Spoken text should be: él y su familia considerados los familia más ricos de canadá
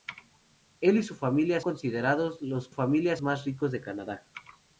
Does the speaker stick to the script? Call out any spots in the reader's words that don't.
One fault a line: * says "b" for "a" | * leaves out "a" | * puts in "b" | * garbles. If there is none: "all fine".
all fine